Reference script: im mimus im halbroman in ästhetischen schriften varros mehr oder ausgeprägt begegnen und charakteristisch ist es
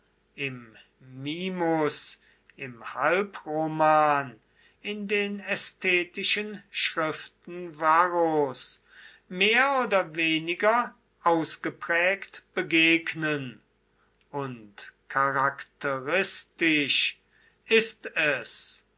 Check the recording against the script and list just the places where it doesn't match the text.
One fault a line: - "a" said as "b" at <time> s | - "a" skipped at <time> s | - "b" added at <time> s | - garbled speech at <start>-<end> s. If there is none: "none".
- "den" added at 5.1 s
- "weniger" added at 10.1 s